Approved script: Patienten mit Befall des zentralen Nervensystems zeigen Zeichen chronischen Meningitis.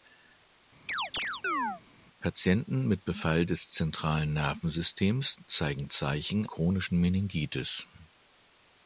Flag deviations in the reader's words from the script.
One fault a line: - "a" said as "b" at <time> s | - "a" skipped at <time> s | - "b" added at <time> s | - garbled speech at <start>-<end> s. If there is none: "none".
none